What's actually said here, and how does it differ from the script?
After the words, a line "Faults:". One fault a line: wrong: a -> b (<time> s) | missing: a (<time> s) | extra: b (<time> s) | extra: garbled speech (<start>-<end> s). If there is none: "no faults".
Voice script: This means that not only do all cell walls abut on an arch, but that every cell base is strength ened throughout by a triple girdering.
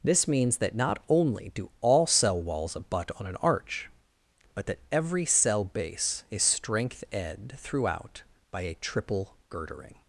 This means that not only do all cell walls abut on an arch, but that every cell base is strength ed throughout by a triple girdering.
Faults:
wrong: ened -> ed (7.1 s)